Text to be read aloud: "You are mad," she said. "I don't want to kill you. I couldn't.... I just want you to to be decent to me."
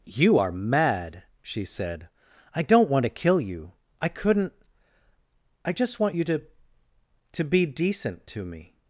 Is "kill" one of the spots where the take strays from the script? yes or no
no